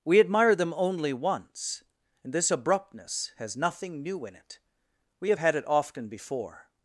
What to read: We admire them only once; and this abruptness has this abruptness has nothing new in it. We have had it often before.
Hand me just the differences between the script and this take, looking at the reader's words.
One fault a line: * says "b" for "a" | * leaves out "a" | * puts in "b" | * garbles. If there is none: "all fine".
* leaves out "this abruptness has"